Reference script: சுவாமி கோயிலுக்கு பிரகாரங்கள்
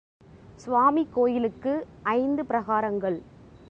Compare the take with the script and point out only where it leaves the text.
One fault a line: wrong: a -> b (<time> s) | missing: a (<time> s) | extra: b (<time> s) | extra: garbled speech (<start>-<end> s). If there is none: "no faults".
extra: ஐந்து (2.0 s)